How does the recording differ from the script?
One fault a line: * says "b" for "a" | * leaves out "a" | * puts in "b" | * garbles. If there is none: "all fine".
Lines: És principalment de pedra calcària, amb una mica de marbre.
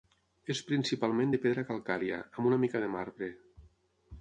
all fine